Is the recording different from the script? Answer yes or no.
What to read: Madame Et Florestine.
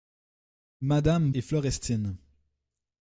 no